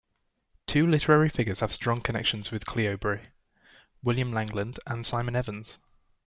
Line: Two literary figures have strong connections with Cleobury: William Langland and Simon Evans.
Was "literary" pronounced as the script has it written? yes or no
yes